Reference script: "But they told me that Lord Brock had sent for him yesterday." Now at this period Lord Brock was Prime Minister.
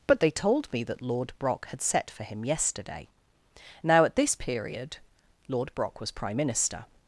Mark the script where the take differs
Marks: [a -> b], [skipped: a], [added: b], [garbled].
"But they told me that Lord Brock had [sent -> set] for him yesterday." Now at this period Lord Brock was Prime Minister.